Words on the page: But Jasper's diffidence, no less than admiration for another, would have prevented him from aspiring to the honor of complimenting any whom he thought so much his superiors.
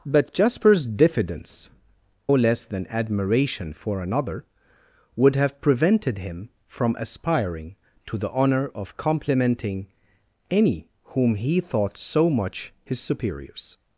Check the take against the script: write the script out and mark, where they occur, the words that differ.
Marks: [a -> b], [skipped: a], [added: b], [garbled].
But Jasper's diffidence, [skipped: no] less than admiration for another, would have prevented him from aspiring to the honor of complimenting any whom he thought so much his superiors.